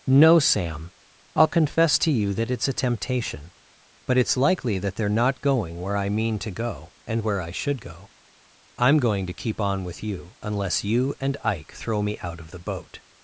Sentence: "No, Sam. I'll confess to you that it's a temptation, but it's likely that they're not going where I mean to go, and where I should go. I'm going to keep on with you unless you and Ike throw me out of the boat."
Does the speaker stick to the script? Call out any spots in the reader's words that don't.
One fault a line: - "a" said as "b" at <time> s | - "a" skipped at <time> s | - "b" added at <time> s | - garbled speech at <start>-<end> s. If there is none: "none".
none